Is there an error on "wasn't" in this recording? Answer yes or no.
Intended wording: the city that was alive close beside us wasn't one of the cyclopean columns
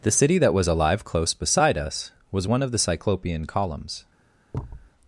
yes